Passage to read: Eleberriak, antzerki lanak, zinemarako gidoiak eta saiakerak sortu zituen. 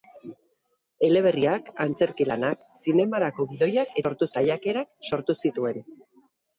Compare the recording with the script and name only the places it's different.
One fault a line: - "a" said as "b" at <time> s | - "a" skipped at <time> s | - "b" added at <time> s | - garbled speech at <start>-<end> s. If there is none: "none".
- "eta" said as "sortu" at 4.1 s